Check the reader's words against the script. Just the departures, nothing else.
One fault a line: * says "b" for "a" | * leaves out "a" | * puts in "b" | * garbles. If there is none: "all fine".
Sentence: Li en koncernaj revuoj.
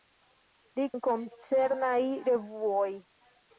all fine